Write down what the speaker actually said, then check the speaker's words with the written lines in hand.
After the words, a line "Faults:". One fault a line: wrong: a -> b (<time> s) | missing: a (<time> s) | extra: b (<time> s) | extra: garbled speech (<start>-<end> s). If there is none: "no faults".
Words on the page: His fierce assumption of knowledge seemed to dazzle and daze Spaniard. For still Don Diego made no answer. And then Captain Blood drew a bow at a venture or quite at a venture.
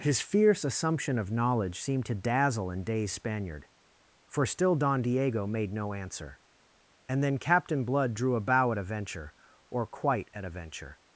His fierce assumption of knowledge seemed to dazzle and daze Spaniard. For still Don Diego made no answer. And then Captain Blood drew a bow at a venture or quite at a venture.
Faults:
no faults